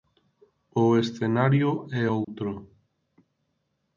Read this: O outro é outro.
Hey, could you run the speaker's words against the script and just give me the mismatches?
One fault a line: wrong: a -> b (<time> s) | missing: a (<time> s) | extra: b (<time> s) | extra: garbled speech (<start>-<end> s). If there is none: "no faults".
wrong: outro -> escenario (1.0 s)